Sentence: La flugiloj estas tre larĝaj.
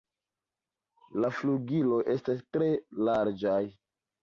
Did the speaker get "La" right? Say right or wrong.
right